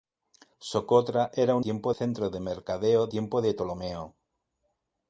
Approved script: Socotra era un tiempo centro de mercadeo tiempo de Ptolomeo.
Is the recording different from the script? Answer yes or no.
no